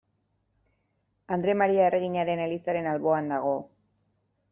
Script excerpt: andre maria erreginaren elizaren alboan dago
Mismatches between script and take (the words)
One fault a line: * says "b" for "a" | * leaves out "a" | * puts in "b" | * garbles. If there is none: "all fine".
all fine